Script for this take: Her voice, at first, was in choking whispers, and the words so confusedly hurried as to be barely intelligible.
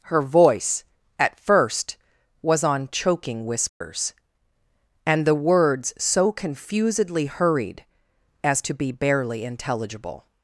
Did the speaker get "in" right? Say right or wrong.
wrong